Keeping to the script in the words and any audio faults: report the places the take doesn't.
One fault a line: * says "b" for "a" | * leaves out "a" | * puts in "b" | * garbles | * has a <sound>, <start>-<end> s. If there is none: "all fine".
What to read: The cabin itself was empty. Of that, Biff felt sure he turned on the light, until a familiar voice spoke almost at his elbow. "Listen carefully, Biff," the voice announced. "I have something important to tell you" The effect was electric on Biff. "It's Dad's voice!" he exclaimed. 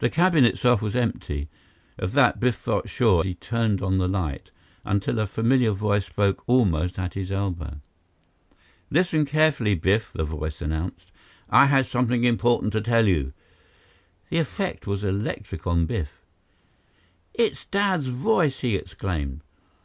all fine